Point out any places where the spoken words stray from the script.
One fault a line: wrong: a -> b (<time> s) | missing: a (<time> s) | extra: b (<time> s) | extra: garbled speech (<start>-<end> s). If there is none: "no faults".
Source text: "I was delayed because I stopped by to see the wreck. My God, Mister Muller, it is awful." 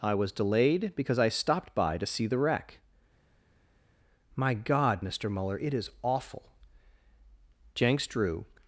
extra: Jenks drew (7.7 s)